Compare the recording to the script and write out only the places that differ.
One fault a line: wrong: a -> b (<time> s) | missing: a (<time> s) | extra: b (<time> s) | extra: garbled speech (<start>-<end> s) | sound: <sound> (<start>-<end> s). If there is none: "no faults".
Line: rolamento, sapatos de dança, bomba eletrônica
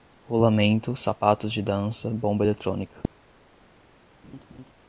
sound: laugh (4.2-4.7 s)